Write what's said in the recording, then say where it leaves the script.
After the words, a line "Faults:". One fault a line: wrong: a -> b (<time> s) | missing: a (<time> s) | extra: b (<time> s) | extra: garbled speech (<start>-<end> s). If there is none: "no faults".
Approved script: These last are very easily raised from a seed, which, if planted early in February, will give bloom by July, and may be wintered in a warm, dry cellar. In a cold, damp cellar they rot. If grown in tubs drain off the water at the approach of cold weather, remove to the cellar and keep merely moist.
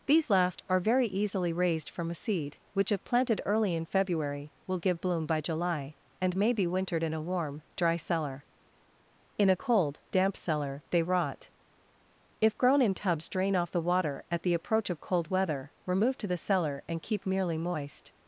These last are very easily raised from a seed, which, if planted early in February, will give bloom by July, and may be wintered in a warm, dry cellar. In a cold, damp cellar they rot. If grown in tubs drain off the water at the approach of cold weather, remove to the cellar and keep merely moist.
Faults:
no faults